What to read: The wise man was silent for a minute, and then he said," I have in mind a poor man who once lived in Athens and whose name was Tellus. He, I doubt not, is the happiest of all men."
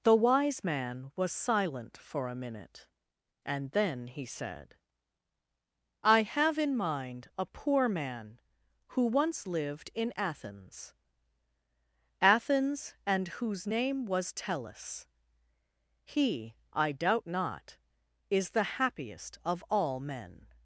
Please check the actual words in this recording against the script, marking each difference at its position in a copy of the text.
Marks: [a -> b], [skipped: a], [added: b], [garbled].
The wise man was silent for a minute, and then he said," I have in mind a poor man who once lived in Athens [added: Athens] and whose name was Tellus. He, I doubt not, is the happiest of all men."